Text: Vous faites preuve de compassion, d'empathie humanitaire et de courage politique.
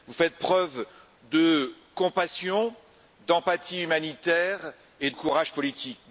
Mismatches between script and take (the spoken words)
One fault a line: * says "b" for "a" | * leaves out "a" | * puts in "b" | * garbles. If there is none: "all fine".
* leaves out "de"